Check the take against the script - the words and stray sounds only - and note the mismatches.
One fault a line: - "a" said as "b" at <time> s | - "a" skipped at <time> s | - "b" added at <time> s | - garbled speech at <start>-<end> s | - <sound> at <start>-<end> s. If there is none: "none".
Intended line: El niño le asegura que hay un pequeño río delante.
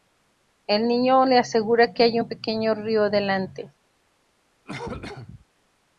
- cough at 4.7-5.5 s